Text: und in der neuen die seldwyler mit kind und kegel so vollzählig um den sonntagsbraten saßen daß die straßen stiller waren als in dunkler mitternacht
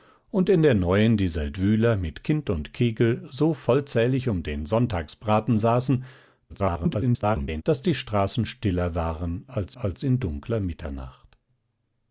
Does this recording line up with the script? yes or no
no